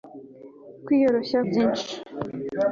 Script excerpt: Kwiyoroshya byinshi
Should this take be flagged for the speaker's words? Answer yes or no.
no